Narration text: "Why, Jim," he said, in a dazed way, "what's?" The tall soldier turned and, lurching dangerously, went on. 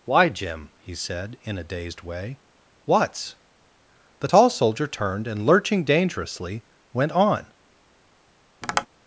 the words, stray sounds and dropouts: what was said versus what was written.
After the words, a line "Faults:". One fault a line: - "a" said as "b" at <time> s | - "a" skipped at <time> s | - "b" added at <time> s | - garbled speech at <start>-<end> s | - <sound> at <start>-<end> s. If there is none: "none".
"Why, Jim," he said, in a dazed way, "what's?" The tall soldier turned and, lurching dangerously, went on.
Faults:
- tap at 8.6-8.9 s